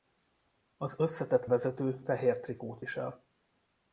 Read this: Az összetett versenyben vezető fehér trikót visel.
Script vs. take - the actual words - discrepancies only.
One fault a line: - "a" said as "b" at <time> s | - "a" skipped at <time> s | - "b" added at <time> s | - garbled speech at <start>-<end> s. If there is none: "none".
- "versenyben" skipped at 1.4 s